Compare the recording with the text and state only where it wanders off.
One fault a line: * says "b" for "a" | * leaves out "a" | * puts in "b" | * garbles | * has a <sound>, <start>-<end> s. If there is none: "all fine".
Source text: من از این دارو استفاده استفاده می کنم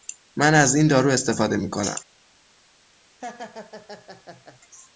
* leaves out "استفاده"
* has a laugh, 3.2-4.6 s